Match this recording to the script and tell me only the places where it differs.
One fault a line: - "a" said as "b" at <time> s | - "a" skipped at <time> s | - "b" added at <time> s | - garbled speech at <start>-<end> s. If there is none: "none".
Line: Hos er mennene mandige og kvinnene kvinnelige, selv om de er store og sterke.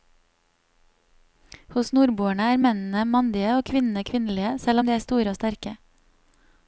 - "nordboerne" added at 2.0 s